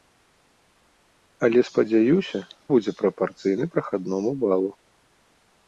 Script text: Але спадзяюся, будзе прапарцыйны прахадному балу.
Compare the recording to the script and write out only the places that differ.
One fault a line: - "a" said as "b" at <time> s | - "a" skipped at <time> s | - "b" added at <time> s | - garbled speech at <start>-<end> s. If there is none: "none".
none